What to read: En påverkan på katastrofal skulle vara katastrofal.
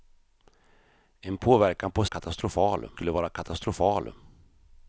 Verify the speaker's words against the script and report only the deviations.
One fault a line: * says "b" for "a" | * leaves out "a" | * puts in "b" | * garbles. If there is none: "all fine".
all fine